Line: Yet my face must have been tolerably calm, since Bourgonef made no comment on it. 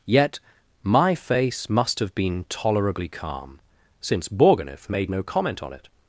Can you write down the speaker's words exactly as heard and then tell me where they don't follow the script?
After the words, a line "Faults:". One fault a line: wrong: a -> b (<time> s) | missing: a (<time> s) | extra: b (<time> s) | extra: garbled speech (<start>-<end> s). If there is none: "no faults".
Yet my face must have been tolerably calm, since Bourgonef made no comment on it.
Faults:
no faults